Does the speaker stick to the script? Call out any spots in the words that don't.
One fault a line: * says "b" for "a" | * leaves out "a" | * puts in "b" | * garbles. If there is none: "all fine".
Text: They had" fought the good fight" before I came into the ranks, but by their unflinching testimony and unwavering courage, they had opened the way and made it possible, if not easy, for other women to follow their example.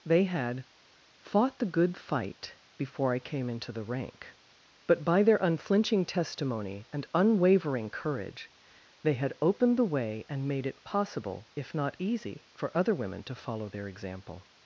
* says "rank" for "ranks"